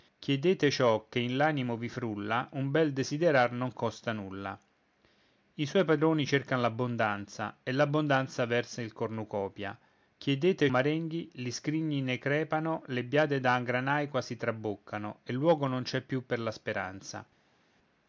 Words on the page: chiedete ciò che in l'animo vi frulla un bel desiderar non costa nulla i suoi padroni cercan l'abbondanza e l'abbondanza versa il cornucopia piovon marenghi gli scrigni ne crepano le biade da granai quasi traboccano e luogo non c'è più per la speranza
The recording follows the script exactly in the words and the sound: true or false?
false